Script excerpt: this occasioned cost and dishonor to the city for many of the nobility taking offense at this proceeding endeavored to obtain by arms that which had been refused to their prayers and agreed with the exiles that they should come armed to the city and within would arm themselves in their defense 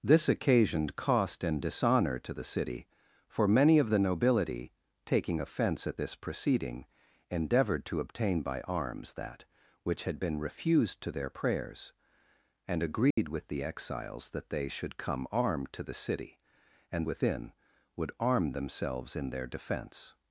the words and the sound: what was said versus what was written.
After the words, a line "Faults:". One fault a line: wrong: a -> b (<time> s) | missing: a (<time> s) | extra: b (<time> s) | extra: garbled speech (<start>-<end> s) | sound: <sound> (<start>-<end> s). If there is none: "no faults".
this occasioned cost and dishonor to the city for many of the nobility taking offense at this proceeding endeavored to obtain by arms that which had been refused to their prayers and agreed with the exiles that they should come armed to the city and within would arm themselves in their defense
Faults:
sound: dropout (13.1-13.2 s)